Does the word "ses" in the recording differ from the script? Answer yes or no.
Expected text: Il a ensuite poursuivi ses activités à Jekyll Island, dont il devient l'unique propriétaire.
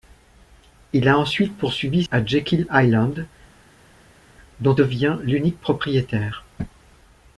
yes